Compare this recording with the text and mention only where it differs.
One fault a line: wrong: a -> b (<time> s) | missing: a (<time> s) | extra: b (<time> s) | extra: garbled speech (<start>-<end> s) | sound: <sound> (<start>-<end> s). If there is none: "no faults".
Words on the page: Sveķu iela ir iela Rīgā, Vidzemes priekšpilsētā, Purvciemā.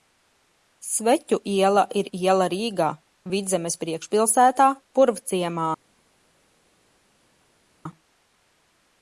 no faults